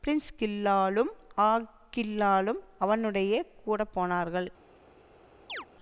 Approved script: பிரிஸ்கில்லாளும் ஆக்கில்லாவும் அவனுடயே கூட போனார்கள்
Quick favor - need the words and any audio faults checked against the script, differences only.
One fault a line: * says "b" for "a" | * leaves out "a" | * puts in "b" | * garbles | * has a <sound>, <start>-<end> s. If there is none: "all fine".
* has a chirp, 5.5-5.7 s